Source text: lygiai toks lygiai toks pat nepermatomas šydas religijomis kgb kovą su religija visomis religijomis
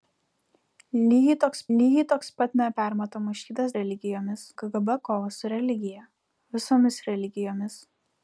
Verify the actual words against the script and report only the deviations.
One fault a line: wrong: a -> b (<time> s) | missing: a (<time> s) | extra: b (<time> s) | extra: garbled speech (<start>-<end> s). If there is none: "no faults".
no faults